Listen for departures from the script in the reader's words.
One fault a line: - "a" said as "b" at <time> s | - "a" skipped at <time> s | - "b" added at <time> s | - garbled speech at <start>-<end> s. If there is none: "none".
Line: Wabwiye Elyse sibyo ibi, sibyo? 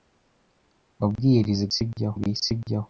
none